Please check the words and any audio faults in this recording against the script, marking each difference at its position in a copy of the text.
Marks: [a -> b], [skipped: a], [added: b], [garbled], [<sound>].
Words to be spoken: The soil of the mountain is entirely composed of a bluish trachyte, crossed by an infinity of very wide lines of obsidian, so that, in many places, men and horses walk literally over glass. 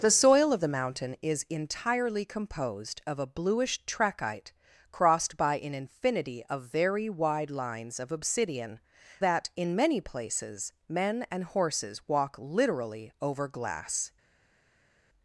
The soil of the mountain is entirely composed of a bluish trachyte, crossed by an infinity of very wide lines of obsidian, [skipped: so] that, in many places, men and horses walk literally over glass.